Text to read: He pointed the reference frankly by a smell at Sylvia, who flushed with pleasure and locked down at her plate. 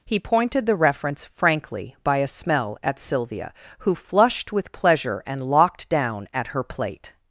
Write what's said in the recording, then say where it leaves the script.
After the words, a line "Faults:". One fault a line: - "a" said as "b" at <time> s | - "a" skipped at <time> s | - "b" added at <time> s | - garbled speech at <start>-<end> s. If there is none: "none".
He pointed the reference frankly by a smell at Sylvia, who flushed with pleasure and locked down at her plate.
Faults:
none